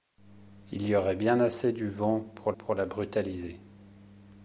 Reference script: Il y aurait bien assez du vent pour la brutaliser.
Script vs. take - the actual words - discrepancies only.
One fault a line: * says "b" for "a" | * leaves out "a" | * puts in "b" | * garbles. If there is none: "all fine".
* puts in "pour"